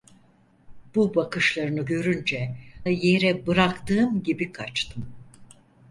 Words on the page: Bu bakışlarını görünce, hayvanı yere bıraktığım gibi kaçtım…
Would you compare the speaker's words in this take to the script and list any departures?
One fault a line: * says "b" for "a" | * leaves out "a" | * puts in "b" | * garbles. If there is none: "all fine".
* leaves out "hayvanı"